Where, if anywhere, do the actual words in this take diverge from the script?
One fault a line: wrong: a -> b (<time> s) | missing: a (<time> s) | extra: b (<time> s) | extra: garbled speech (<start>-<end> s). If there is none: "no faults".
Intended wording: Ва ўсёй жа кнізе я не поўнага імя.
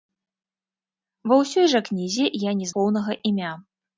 no faults